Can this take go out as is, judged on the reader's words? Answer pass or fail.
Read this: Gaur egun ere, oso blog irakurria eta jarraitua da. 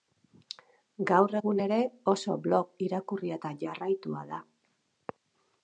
pass